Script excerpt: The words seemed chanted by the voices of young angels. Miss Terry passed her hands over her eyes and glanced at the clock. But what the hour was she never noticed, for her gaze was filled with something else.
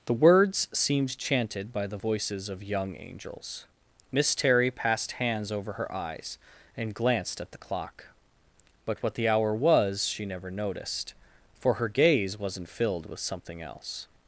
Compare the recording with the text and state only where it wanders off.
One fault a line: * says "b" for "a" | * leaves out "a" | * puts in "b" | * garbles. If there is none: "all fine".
* leaves out "her"
* says "wasn't" for "was"